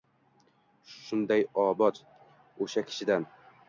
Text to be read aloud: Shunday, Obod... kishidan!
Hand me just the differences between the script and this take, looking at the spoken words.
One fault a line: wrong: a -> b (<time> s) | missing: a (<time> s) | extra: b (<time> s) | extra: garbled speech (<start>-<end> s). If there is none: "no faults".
extra: o‘sha (2.7 s)